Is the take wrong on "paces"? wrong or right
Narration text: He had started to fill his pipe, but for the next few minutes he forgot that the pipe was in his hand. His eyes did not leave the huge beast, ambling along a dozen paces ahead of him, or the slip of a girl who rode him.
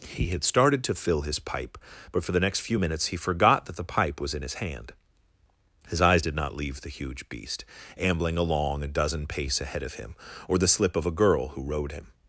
wrong